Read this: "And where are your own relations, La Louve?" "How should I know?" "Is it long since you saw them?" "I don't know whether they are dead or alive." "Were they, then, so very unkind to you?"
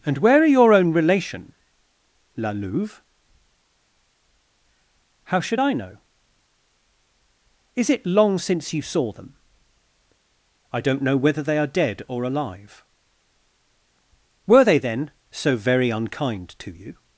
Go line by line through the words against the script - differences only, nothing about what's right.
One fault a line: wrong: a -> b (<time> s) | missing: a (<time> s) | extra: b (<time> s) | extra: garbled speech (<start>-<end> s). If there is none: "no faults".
wrong: relations -> relation (0.9 s)